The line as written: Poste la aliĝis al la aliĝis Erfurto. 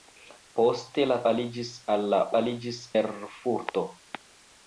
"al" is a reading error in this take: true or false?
false